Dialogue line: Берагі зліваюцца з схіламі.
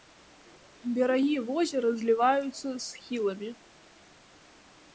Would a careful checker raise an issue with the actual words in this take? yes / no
yes